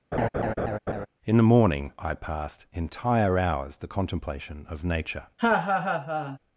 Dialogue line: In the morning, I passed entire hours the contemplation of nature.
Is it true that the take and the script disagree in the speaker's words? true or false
false